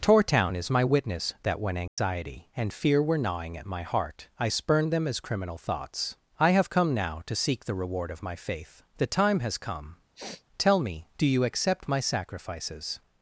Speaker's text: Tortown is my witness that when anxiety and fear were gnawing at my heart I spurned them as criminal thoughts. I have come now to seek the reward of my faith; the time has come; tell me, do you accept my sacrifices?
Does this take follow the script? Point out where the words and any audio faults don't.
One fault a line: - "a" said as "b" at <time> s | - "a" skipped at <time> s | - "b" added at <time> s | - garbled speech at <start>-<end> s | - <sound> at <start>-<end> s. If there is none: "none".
- dropout at 1.9-2.0 s
- sniff at 10.2-10.4 s